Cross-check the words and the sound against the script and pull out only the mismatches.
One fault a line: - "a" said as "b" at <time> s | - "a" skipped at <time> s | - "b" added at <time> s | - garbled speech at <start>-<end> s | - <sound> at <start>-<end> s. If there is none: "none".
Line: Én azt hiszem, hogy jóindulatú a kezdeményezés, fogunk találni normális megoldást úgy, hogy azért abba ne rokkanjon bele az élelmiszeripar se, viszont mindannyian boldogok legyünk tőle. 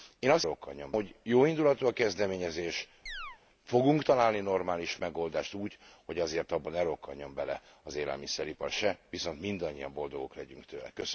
- "hiszem" said as "rokkanjon" at 0.4 s
- chirp at 3.1-3.4 s